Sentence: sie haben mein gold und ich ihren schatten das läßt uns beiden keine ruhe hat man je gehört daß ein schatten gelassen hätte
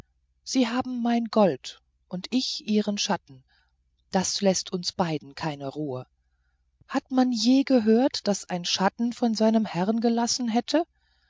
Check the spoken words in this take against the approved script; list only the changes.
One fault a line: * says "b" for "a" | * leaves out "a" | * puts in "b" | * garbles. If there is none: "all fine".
* puts in "von seinem herrn"